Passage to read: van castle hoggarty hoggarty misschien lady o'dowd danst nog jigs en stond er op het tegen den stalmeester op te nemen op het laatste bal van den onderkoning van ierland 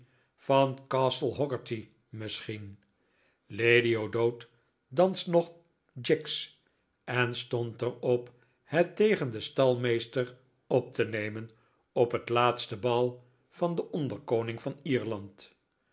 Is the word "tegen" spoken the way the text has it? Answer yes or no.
yes